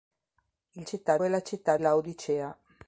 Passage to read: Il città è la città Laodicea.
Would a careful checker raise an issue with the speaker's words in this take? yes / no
no